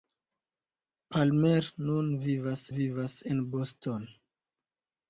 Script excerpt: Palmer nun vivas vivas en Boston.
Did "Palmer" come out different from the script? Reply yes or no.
no